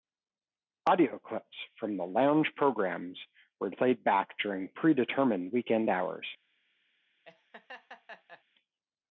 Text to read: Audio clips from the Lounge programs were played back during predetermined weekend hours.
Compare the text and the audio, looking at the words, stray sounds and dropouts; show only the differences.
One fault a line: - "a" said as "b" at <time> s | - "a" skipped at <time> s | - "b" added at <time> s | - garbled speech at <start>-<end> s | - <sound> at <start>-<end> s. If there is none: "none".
- laugh at 7.2-8.4 s